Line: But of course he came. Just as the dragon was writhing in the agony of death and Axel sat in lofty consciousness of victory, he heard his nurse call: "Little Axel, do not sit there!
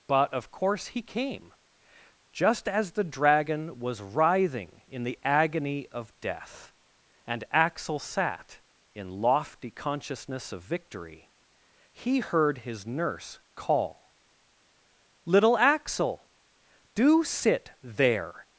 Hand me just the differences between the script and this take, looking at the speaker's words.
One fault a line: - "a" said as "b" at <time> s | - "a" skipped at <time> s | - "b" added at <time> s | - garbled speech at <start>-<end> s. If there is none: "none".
- "not" skipped at 17.2 s